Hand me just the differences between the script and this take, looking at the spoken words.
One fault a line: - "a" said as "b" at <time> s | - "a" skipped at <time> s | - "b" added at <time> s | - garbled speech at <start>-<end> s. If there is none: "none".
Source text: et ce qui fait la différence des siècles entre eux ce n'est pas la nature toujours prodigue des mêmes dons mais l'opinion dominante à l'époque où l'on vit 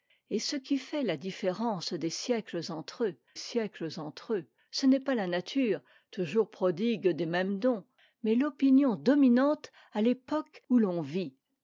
- "siècles entre eux" added at 3.3 s